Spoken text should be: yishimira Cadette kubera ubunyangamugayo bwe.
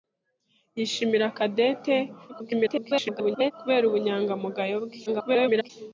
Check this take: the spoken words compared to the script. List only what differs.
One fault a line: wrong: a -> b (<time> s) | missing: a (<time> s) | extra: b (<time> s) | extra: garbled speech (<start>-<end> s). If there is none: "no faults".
extra: garbled speech (2.3-3.5 s)
extra: garbled speech (5.1-5.7 s)